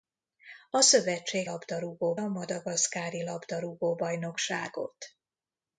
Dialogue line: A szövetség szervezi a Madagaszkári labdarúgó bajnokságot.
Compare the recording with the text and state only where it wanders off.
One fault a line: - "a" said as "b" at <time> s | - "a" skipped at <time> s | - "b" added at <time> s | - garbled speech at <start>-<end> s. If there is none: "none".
- "szervezi" said as "labdarúgó" at 1.4 s